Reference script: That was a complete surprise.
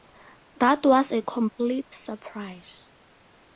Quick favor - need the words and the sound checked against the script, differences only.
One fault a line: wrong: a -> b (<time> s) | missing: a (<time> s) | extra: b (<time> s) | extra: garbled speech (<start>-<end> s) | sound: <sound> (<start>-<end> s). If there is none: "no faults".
no faults